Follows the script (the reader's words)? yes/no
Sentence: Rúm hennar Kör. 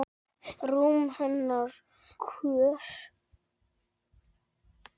yes